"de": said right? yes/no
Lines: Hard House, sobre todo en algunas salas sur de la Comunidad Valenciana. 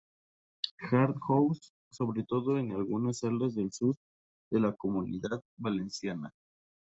yes